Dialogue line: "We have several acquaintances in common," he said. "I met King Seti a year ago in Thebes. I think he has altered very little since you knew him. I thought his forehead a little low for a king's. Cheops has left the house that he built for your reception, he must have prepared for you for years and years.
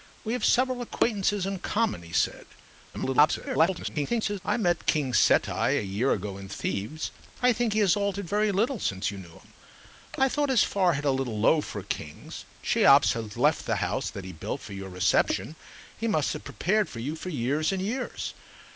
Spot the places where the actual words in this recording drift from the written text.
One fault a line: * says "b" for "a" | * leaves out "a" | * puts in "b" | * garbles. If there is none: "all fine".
* garbles